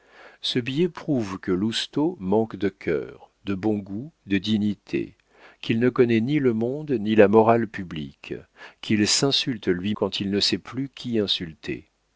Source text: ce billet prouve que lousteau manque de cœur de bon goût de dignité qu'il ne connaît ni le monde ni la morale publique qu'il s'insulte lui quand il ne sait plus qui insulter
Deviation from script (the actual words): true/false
false